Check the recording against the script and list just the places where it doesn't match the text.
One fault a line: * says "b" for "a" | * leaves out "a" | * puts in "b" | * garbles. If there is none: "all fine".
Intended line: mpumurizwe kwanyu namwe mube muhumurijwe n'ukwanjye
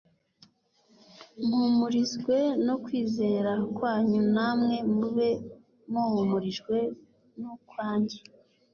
* puts in "no kwizera"